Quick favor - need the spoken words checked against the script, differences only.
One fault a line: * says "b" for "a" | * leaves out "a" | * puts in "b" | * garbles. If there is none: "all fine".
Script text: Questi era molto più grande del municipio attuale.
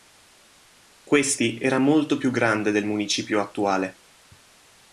all fine